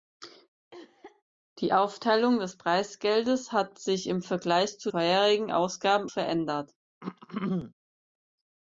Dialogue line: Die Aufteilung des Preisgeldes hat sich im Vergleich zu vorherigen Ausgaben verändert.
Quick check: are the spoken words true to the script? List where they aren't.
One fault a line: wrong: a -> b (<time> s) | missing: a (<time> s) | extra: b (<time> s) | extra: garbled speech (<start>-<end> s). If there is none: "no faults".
no faults